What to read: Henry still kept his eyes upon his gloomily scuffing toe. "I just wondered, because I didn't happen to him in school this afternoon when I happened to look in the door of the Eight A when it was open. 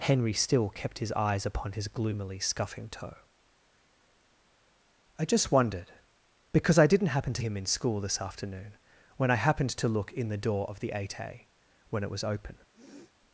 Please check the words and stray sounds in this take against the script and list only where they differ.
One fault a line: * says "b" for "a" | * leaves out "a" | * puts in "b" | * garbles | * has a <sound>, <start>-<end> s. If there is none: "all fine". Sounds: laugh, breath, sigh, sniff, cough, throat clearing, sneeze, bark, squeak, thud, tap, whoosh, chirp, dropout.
* has a sniff, 12.7-13.1 s